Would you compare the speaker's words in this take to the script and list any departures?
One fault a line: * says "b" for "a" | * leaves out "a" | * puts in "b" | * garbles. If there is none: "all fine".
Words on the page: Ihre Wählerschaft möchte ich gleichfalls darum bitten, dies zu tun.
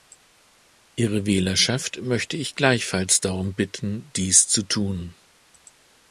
all fine